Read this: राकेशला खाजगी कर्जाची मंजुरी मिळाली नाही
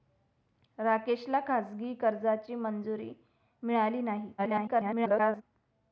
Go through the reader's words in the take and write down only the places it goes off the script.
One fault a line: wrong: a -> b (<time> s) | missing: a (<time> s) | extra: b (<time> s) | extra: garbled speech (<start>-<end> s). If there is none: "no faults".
extra: garbled speech (4.4-5.4 s)